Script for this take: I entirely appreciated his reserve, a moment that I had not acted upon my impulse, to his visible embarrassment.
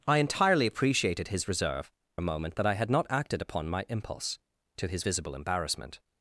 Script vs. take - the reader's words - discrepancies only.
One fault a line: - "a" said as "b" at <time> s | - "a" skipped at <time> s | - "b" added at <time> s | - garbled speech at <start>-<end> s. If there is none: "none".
none